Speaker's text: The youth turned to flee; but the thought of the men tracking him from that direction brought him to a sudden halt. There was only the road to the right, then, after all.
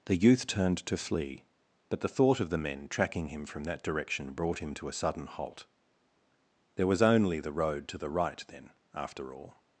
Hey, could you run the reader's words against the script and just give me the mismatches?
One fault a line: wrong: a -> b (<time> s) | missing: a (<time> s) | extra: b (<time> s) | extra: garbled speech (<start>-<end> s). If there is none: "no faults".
no faults